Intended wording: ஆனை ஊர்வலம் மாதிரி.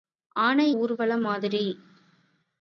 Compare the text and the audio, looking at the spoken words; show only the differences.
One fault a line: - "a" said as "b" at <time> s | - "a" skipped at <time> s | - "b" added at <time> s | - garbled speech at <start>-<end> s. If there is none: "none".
none